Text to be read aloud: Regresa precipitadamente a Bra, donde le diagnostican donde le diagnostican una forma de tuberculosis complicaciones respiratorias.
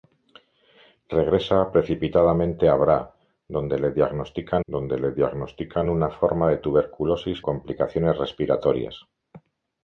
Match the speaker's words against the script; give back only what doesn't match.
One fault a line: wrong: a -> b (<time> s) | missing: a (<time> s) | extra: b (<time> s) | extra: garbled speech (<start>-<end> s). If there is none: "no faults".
no faults